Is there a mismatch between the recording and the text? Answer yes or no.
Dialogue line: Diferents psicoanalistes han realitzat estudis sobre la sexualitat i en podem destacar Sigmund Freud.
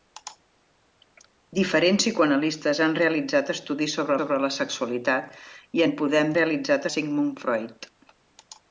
yes